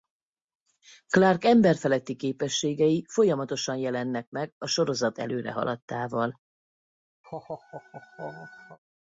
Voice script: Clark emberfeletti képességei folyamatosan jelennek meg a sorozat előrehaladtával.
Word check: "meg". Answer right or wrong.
right